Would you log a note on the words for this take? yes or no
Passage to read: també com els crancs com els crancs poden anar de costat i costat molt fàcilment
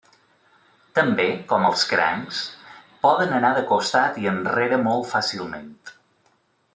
yes